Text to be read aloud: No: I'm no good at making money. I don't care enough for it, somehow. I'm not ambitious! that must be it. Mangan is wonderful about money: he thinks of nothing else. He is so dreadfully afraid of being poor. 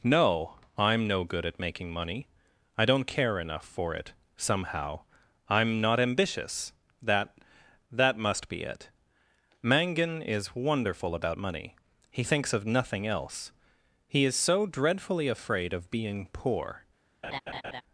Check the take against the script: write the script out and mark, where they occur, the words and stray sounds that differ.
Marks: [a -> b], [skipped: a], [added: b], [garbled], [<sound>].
No: I'm no good at making money. I don't care enough for it, somehow. I'm not ambitious! that [added: that] must be it. Mangan is wonderful about money: he thinks of nothing else. He is so dreadfully afraid of being poor. [laugh]